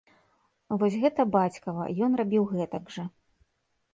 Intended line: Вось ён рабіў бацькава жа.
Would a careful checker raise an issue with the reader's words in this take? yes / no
yes